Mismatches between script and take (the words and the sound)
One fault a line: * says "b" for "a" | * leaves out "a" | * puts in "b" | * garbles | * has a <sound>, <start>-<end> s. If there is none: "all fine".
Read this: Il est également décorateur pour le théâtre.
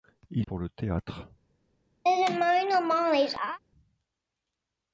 * leaves out "est également décorateur"
* has a laugh, 2.0-3.6 s